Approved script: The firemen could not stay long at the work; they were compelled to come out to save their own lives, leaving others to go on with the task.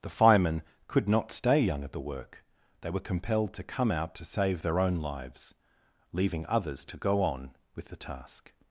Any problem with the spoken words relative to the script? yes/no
yes